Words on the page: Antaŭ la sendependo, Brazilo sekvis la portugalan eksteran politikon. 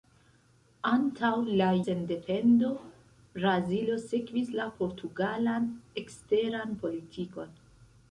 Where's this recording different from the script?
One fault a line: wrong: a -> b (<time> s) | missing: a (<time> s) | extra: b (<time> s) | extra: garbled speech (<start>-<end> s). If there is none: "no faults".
no faults